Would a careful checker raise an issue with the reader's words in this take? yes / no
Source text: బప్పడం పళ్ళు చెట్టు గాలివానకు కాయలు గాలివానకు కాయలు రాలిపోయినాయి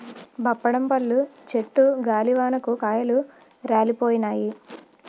yes